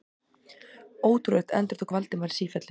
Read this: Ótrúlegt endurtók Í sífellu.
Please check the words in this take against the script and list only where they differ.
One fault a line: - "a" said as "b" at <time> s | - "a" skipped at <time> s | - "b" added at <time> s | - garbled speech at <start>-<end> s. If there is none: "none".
- "Valdimar" added at 1.9 s